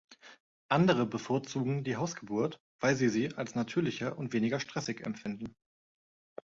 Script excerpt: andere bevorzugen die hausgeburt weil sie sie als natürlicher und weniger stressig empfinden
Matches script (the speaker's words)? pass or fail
pass